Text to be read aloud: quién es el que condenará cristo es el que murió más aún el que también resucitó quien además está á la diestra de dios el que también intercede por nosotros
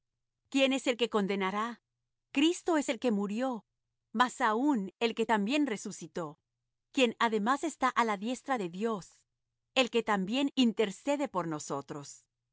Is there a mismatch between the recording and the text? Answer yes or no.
no